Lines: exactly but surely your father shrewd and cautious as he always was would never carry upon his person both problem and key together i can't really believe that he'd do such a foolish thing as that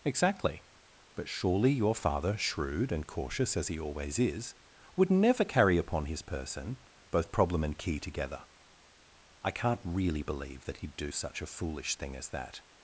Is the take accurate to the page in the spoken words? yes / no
no